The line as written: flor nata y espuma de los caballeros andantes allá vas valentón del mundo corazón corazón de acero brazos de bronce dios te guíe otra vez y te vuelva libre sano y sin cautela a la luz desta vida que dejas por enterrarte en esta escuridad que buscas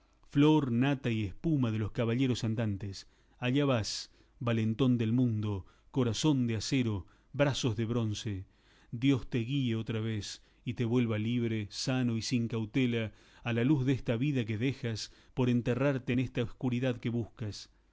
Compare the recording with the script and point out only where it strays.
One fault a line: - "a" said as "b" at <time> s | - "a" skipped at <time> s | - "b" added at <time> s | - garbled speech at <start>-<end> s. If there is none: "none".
- "corazón" skipped at 6.5 s